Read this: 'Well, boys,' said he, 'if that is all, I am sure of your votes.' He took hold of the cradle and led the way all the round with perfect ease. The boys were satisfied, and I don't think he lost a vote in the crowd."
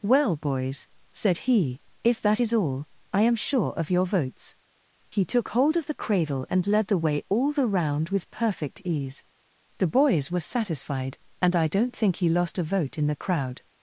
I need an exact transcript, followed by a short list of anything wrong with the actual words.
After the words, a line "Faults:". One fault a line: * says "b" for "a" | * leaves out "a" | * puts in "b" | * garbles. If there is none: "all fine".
'Well, boys,' said he, 'if that is all, I am sure of your votes.' He took hold of the cradle and led the way all the round with perfect ease. The boys were satisfied, and I don't think he lost a vote in the crowd."
Faults:
all fine